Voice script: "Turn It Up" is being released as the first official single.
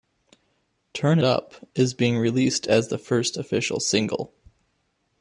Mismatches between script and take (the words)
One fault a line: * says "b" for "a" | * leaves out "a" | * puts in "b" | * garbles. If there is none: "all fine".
* leaves out "It"